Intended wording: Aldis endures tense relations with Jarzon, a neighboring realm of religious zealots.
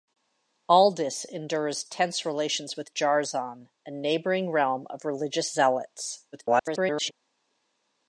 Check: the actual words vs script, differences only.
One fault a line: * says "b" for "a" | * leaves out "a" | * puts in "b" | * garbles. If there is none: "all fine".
* garbles